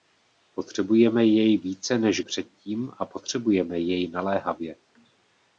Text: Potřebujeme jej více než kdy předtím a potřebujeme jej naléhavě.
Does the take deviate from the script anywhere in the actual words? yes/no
yes